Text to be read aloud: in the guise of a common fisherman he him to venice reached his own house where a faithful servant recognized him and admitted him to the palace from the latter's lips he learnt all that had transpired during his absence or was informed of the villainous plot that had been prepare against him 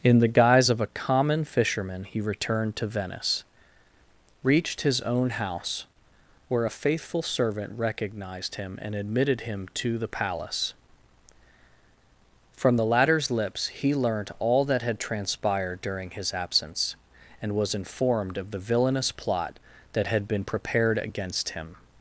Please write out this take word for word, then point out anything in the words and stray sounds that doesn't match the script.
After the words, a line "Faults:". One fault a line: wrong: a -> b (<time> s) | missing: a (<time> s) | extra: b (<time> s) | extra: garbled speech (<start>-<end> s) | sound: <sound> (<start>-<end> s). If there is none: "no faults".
in the guise of a common fisherman he returned to venice reached his own house where a faithful servant recognized him and admitted him to the palace from the latter's lips he learnt all that had transpired during his absence and was informed of the villainous plot that had been prepared against him
Faults:
wrong: him -> returned (2.2 s)
wrong: or -> and (17.4 s)
wrong: prepare -> prepared (20.4 s)